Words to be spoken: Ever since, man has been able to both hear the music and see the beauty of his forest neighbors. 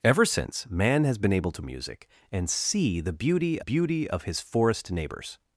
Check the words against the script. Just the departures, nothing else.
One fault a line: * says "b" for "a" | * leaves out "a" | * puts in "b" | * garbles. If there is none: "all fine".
* leaves out "both hear the"
* puts in "beauty"